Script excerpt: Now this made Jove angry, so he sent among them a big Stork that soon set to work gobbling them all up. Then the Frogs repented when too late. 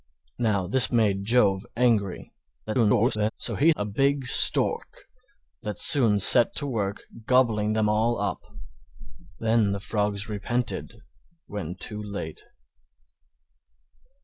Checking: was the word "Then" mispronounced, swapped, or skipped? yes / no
no